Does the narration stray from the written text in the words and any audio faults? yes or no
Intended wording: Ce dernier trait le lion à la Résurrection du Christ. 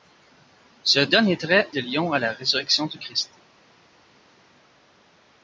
no